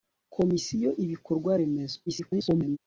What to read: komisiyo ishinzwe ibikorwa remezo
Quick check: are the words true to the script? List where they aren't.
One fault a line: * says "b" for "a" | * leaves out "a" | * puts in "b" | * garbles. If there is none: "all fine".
* leaves out "ishinzwe"
* garbles